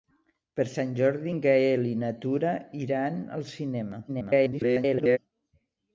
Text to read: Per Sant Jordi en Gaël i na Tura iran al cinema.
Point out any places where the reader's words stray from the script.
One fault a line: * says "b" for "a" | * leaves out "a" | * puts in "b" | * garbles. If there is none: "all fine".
* garbles